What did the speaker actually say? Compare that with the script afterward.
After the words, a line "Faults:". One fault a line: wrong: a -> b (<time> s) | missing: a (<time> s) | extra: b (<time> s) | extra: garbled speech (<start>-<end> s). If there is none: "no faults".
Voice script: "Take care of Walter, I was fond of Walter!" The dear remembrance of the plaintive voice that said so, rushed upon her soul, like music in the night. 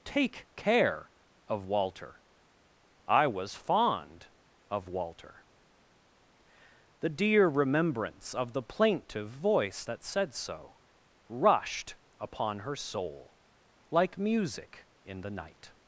"Take care of Walter, I was fond of Walter!" The dear remembrance of the plaintive voice that said so, rushed upon her soul, like music in the night.
Faults:
no faults